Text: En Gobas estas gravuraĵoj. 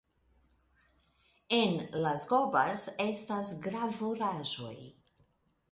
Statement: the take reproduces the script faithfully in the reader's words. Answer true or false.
false